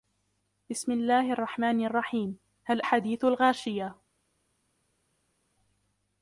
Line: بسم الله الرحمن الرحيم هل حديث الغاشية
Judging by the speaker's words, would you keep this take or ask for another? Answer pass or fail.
pass